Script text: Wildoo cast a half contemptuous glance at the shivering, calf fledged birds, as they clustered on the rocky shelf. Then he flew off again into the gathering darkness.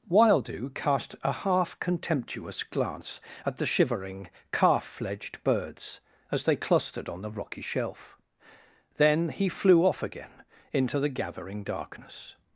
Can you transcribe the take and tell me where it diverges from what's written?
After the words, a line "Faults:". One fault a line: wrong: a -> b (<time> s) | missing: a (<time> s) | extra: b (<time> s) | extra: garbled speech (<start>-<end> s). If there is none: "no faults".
Wildoo cast a half contemptuous glance at the shivering, calf fledged birds, as they clustered on the rocky shelf. Then he flew off again into the gathering darkness.
Faults:
no faults